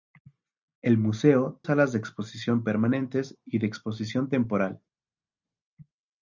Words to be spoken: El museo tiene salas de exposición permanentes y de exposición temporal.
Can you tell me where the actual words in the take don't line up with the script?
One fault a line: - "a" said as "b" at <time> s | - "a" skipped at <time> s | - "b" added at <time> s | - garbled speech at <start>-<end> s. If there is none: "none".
- "tiene" skipped at 1.6 s